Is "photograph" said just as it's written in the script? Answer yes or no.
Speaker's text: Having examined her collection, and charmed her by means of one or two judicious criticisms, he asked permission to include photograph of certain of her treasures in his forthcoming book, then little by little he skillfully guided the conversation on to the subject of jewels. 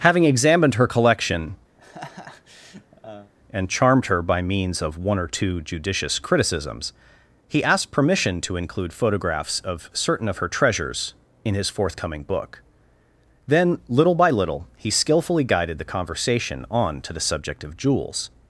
no